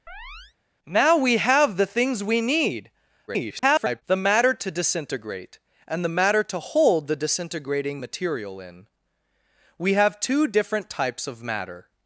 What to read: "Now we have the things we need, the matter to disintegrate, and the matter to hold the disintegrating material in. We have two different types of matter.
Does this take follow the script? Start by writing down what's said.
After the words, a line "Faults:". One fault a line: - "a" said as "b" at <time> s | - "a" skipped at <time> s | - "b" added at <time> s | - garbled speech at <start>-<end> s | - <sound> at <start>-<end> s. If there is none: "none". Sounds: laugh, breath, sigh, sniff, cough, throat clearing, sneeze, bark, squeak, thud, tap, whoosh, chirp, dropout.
"Now we have the things we need, [garbled] the matter to disintegrate, and the matter to hold the disintegrating material in. We have two different types of matter.
Faults:
- chirp at 0.1-0.5 s
- garbled speech at 3.3-4.0 s